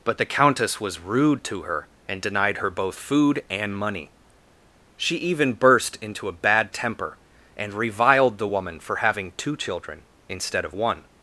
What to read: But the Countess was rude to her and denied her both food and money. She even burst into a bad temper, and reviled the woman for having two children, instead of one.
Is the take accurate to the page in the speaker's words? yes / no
yes